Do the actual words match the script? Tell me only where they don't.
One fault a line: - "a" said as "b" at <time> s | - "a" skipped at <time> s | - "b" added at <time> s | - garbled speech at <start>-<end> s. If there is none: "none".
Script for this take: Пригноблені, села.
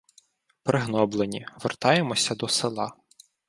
- "вертаємося до" added at 1.6 s